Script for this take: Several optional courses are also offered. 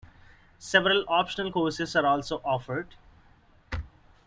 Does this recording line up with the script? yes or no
yes